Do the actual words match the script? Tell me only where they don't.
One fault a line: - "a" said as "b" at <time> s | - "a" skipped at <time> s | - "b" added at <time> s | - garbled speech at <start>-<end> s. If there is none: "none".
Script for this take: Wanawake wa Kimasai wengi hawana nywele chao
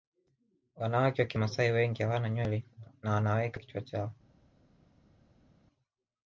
- "na wanaweka kichwa" added at 3.0 s